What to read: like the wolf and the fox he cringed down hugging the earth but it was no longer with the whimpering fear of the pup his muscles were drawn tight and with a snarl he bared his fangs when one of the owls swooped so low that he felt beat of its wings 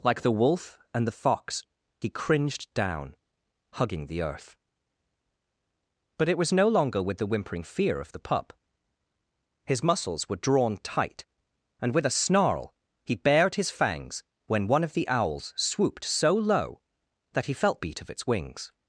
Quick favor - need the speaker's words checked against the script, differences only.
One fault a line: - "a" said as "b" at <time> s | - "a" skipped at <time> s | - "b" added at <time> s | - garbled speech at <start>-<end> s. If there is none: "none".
none